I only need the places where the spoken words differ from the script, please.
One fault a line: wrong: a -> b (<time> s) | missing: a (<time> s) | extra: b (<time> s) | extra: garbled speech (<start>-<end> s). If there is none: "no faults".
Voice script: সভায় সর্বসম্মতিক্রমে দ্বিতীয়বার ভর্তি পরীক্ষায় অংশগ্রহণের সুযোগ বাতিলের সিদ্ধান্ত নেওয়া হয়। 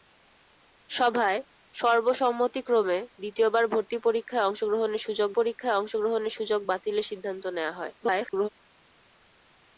extra: পরীক্ষায় অংশগ্রহণের সুযোগ (5.4 s)
extra: garbled speech (8.0-8.5 s)